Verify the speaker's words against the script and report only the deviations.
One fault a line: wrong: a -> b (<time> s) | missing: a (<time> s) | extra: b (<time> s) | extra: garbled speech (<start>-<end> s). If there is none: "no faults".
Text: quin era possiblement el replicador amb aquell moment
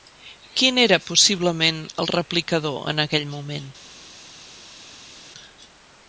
wrong: amb -> en (2.9 s)